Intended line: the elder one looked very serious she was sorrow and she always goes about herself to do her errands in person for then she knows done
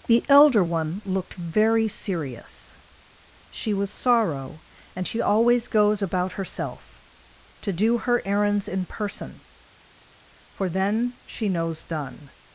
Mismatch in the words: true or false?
false